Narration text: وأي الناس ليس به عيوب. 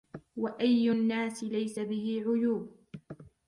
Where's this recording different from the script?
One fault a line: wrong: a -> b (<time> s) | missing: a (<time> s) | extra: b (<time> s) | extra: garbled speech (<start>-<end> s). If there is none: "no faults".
no faults